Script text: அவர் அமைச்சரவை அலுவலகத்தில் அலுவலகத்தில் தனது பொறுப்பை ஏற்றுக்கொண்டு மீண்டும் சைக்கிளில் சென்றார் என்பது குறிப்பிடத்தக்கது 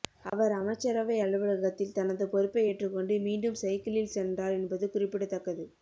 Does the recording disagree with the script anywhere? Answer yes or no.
yes